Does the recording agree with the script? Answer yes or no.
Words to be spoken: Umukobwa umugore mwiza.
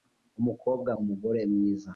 yes